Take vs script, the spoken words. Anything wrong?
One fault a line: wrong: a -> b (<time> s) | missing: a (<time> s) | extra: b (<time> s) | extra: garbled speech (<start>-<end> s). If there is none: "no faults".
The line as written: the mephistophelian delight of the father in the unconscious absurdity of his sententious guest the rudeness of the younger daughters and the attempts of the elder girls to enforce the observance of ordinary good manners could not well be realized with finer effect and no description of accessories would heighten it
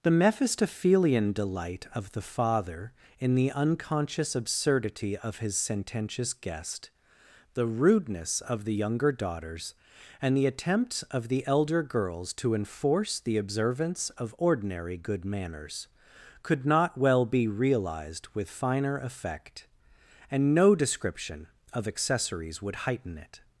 no faults